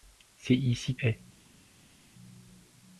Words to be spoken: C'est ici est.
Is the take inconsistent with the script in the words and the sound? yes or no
no